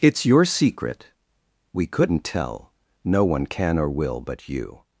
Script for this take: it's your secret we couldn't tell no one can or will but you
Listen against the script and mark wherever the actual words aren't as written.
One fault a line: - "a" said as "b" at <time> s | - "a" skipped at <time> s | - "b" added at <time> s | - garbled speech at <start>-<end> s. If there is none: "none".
none